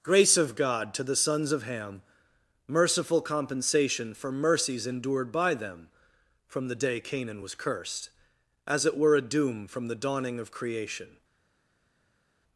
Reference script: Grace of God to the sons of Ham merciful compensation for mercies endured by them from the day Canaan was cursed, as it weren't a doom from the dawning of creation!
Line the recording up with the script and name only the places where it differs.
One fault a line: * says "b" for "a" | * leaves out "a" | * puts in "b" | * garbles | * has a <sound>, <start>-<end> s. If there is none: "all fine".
* says "were" for "weren't"